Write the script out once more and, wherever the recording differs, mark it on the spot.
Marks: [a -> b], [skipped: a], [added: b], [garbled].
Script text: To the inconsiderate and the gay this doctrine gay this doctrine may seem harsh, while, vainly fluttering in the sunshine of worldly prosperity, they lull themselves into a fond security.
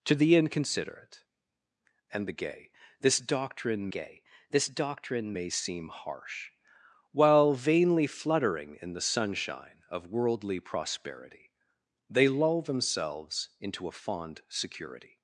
To the inconsiderate and the gay this doctrine gay this doctrine may seem harsh, while, vainly fluttering in the sunshine of worldly prosperity, they lull themselves into a fond security.